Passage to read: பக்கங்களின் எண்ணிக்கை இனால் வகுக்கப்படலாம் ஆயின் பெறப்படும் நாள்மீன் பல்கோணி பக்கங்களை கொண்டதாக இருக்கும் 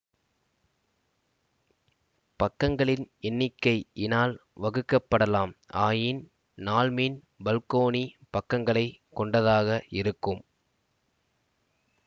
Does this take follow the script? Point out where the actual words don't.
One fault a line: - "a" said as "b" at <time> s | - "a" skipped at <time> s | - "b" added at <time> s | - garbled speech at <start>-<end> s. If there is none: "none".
- "பெறப்படும்" skipped at 6.2 s